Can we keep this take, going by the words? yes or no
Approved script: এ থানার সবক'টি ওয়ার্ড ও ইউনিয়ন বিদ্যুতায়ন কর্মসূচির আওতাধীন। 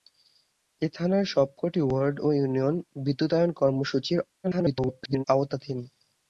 no